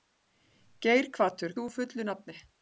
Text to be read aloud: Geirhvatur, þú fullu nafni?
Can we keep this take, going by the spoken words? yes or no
yes